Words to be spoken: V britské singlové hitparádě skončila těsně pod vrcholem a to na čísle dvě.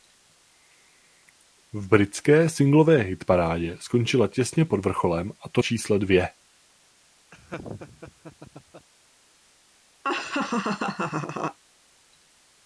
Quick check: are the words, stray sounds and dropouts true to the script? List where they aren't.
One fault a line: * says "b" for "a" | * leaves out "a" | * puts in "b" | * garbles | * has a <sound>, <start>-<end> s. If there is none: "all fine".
* leaves out "na"
* has a laugh, 7.3-8.9 s
* has a laugh, 10.0-11.6 s